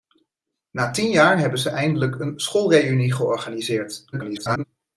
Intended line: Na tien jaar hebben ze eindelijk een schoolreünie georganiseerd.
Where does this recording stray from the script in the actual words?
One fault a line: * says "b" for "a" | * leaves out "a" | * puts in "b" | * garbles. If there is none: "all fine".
* garbles